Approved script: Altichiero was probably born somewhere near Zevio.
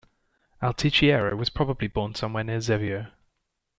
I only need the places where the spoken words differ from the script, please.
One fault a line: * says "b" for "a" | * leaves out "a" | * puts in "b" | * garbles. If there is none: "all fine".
all fine